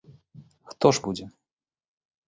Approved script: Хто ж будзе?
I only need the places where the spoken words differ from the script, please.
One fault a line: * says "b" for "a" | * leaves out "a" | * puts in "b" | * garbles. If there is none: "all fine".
all fine